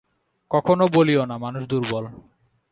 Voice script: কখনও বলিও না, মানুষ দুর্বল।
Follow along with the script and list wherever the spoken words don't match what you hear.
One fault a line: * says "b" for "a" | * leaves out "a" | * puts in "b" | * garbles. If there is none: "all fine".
all fine